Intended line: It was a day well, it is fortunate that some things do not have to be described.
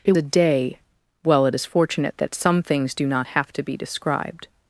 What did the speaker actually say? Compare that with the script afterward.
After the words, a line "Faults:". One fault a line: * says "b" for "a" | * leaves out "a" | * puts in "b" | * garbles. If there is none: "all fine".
It a day well, it is fortunate that some things do not have to be described.
Faults:
* leaves out "was"